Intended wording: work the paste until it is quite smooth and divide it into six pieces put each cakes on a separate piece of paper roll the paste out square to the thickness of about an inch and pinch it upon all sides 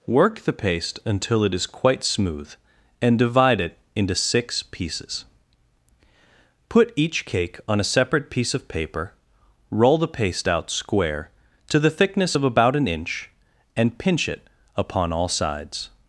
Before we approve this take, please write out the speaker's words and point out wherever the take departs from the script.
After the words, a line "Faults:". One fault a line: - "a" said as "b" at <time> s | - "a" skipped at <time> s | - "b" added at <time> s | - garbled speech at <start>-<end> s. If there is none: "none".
work the paste until it is quite smooth and divide it into six pieces put each cake on a separate piece of paper roll the paste out square to the thickness of about an inch and pinch it upon all sides
Faults:
- "cakes" said as "cake" at 7.2 s